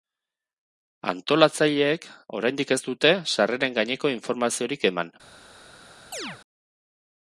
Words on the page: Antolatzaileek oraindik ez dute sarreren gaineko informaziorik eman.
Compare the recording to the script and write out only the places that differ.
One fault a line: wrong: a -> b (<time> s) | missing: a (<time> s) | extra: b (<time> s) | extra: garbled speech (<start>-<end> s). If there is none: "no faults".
no faults